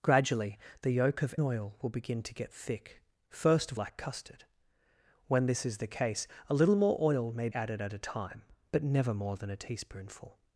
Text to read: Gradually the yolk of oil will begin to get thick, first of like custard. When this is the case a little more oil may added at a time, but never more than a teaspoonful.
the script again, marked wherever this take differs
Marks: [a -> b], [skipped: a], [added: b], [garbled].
Gradually the yolk of oil will begin to get thick, first of like custard. When this is the case a little more oil may added at a time, but never more than a teaspoonful.